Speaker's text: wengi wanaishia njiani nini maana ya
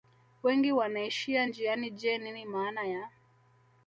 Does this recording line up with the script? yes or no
no